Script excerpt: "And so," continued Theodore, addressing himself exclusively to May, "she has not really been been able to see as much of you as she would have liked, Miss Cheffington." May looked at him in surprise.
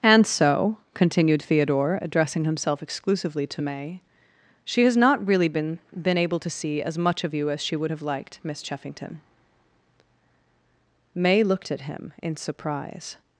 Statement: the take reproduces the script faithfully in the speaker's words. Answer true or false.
true